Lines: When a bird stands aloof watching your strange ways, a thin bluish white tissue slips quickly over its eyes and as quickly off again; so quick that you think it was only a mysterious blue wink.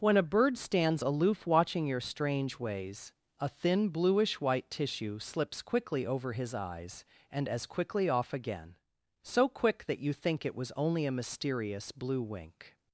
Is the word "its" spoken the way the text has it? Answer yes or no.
no